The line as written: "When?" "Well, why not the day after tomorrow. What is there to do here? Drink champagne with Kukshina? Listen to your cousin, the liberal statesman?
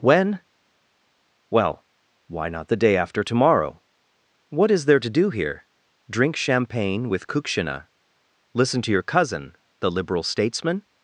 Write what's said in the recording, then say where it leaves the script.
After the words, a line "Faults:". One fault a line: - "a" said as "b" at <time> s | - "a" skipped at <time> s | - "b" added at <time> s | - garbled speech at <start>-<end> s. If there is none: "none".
"When?" "Well, why not the day after tomorrow. What is there to do here? Drink champagne with Kukshina? Listen to your cousin, the liberal statesman?
Faults:
none